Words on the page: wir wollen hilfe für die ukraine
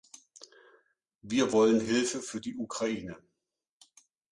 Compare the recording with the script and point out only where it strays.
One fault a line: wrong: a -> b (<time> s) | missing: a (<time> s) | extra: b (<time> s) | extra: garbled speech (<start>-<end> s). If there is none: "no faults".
no faults